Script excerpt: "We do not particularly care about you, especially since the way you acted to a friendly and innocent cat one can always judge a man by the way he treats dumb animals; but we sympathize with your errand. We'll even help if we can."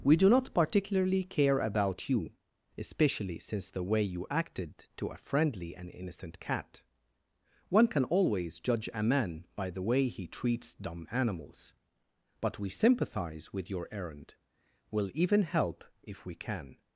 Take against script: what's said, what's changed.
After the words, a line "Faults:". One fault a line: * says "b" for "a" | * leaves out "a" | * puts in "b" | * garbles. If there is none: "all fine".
"We do not particularly care about you, especially since the way you acted to a friendly and innocent cat one can always judge a man by the way he treats dumb animals; but we sympathize with your errand. We'll even help if we can."
Faults:
all fine